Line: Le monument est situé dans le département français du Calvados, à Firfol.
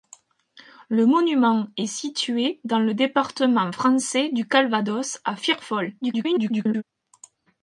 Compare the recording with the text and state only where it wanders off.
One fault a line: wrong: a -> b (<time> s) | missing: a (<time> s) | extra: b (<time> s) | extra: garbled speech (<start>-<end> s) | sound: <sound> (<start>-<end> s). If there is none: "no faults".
extra: garbled speech (6.0-6.8 s)